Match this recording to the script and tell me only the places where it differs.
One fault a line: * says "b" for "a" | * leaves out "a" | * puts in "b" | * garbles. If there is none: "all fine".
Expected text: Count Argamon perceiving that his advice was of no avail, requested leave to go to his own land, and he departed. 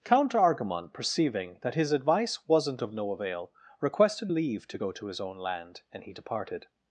* says "wasn't" for "was"